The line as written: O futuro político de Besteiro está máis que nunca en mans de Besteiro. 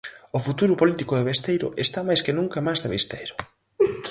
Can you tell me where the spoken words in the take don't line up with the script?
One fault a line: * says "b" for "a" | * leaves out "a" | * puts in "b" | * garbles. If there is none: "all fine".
all fine